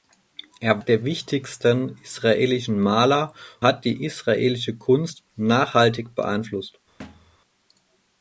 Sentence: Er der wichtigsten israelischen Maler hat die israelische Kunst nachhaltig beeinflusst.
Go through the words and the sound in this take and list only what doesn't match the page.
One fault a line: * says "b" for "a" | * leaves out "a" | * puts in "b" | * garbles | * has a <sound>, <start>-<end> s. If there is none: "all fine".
* has a thud, 7.0-7.4 s